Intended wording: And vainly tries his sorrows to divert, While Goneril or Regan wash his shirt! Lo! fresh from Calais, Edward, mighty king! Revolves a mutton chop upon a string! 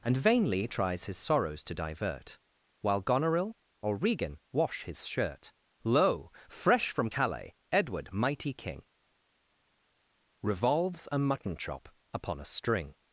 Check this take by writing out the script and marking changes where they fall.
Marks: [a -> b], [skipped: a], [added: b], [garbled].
And vainly tries his sorrows to divert, While Goneril or Regan wash his shirt! Lo! fresh from Calais, Edward, mighty king! Revolves a mutton chop upon a string!